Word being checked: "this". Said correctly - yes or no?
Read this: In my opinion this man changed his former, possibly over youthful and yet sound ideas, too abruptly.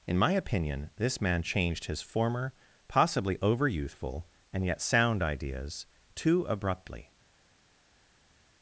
yes